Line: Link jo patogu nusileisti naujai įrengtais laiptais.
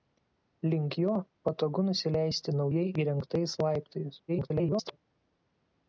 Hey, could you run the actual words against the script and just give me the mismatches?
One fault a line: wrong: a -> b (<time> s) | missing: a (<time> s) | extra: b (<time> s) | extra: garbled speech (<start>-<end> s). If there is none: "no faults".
extra: garbled speech (4.3-5.0 s)